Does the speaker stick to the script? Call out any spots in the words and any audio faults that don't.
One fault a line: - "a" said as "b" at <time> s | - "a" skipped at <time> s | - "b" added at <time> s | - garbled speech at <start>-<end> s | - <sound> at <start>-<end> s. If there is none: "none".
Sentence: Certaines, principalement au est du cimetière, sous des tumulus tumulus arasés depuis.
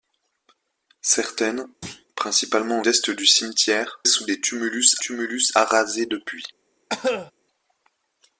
- thud at 1.8-2.1 s
- cough at 6.9-7.3 s